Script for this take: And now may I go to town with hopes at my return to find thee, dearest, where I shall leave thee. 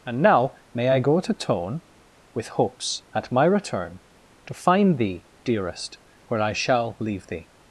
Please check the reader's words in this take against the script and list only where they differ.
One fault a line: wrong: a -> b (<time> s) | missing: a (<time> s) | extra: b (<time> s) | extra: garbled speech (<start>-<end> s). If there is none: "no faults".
wrong: town -> tone (1.3 s)